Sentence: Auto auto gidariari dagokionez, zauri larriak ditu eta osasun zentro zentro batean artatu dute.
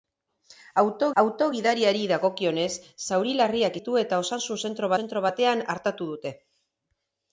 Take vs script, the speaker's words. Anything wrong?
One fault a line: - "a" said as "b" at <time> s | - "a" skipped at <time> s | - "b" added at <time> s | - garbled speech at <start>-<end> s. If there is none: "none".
none